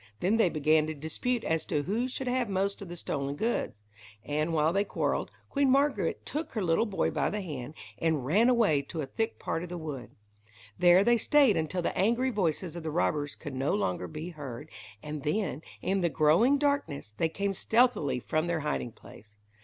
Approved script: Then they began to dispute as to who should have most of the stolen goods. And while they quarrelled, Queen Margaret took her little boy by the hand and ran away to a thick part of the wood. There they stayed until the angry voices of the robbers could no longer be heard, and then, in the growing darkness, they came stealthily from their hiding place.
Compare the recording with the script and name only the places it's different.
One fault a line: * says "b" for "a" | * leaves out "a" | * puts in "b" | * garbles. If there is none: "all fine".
all fine